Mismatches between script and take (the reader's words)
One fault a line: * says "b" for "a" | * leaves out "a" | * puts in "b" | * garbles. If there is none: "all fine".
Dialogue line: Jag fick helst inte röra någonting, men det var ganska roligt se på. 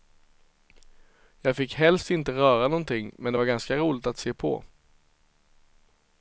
* puts in "att"